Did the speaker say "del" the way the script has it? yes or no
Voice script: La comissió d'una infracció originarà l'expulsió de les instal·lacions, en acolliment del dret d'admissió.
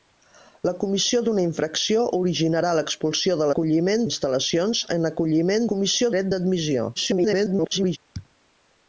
no